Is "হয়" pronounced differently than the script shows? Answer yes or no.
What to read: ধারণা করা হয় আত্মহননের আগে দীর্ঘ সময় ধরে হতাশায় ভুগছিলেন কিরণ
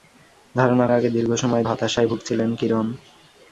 yes